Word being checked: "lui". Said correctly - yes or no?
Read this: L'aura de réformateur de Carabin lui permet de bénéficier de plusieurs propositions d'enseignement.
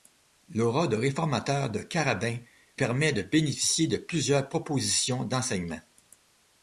no